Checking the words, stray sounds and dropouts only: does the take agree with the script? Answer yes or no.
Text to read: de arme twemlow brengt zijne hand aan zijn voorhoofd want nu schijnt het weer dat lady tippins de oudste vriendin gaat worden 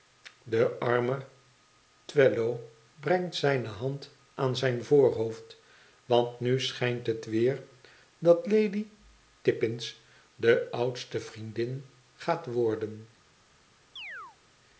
no